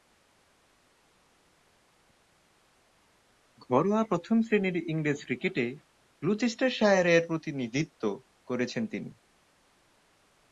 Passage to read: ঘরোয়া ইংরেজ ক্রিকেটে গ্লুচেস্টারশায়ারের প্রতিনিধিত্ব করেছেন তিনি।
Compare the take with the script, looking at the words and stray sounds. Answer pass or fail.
fail